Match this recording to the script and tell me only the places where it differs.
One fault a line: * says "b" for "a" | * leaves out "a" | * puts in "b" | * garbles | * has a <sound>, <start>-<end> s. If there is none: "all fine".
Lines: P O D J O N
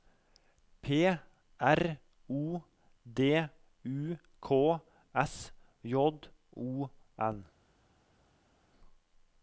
* puts in "R"
* puts in "U K S"